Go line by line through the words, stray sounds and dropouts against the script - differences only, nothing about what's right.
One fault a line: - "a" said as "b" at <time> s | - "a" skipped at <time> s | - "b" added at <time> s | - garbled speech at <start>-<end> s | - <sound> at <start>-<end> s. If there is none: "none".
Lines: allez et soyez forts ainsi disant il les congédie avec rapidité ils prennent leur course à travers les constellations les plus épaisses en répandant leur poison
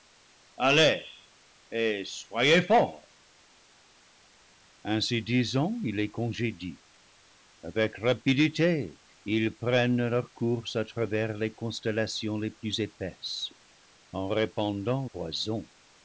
- "leur" skipped at 15.1 s